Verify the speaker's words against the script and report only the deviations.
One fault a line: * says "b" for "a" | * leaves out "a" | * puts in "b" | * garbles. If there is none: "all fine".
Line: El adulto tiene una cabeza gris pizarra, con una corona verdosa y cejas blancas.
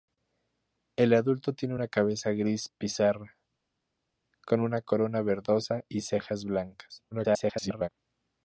* garbles